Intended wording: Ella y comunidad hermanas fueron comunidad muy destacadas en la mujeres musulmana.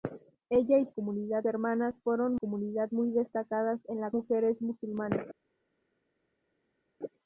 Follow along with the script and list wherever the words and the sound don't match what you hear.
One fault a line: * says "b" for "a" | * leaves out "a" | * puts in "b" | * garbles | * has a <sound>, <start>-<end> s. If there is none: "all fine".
all fine